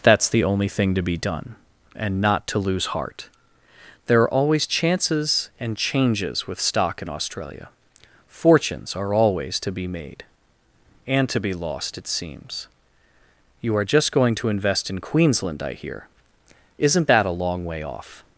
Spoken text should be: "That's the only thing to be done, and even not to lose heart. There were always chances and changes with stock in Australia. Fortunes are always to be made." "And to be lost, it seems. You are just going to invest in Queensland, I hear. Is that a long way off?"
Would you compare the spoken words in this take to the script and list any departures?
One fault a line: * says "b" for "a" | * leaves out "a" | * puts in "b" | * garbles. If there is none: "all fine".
* leaves out "even"
* says "are" for "were"
* says "Isn't" for "Is"